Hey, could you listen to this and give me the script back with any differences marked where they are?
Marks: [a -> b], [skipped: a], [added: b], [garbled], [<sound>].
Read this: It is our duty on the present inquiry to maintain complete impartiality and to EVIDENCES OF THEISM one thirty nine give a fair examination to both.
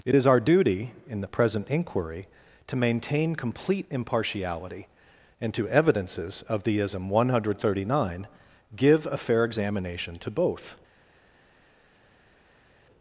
It is our duty [on -> in] the present inquiry to maintain complete impartiality and to EVIDENCES OF THEISM one [added: hundred] thirty nine give a fair examination to both.